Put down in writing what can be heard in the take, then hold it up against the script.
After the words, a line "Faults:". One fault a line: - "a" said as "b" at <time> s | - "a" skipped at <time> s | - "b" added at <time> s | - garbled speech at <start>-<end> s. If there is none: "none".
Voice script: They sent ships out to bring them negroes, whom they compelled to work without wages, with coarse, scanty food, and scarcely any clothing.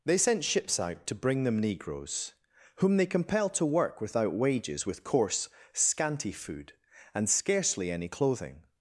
They sent ships out to bring them negroes, whom they compelled to work without wages, with coarse, scanty food, and scarcely any clothing.
Faults:
none